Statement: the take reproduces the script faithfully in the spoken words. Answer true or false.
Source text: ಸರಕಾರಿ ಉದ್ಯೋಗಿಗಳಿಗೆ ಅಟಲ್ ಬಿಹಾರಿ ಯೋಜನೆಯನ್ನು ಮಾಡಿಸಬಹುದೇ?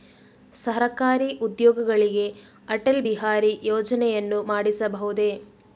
true